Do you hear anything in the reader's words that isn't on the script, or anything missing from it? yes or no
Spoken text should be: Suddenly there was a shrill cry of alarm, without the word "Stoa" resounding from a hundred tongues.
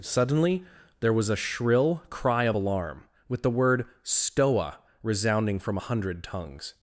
yes